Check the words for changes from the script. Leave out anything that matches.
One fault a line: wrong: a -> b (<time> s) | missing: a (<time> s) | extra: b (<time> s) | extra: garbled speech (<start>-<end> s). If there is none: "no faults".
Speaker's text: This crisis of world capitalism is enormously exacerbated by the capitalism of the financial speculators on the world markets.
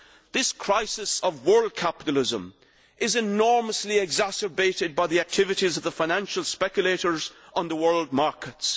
wrong: capitalism -> activities (5.2 s)